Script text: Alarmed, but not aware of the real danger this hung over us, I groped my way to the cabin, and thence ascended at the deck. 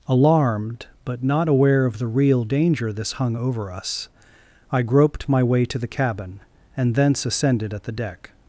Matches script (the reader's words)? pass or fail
pass